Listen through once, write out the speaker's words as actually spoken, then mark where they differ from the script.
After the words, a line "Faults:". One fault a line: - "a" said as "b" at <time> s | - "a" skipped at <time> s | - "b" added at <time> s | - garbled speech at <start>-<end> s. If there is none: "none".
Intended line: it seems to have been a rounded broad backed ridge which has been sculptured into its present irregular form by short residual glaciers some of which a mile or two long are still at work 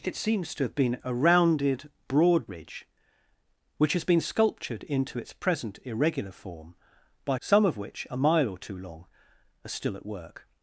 it seems to have been a rounded broad ridge which has been sculptured into its present irregular form by some of which a mile or two long are still at work
Faults:
- "backed" skipped at 2.5 s
- "short residual glaciers" skipped at 7.4 s